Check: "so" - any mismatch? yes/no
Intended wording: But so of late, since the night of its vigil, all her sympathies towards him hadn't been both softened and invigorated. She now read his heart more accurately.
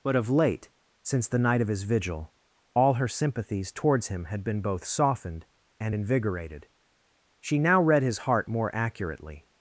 yes